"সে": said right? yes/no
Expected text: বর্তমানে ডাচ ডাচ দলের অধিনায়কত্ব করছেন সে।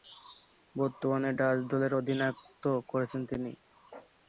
no